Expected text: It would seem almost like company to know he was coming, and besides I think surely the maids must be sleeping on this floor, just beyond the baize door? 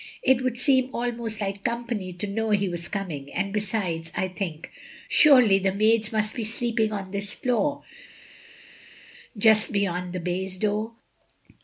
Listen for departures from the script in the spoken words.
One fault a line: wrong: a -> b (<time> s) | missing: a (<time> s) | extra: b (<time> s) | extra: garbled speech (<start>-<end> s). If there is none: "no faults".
no faults